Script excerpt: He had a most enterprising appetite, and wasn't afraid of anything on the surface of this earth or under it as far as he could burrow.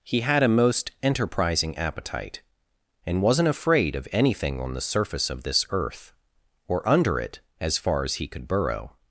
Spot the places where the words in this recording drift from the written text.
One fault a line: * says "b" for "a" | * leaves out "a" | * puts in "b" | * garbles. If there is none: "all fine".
all fine